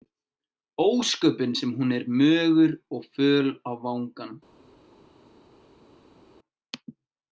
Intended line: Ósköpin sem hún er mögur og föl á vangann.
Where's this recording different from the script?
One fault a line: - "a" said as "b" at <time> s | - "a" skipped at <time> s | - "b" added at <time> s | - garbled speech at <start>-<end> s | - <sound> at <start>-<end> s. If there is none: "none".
none